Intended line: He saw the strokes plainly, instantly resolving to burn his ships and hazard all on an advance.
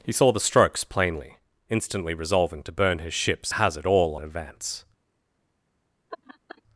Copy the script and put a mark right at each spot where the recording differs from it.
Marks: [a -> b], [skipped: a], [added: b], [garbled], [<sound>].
He saw the strokes plainly, instantly resolving to burn his ships [skipped: and] hazard all [skipped: on an] advance. [laugh]